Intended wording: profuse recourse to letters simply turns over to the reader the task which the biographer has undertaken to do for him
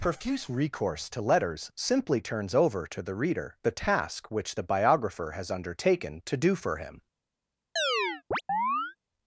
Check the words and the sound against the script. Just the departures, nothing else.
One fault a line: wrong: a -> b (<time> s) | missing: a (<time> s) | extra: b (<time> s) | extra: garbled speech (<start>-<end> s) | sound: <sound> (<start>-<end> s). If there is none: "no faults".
sound: chirp (7.8-9.0 s)